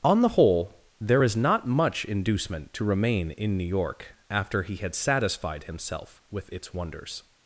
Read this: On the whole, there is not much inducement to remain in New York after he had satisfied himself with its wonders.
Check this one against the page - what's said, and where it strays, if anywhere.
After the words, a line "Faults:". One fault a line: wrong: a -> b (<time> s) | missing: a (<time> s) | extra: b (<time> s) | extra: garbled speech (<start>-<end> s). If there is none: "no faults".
On the whole, there is not much inducement to remain in New York after he had satisfied himself with its wonders.
Faults:
no faults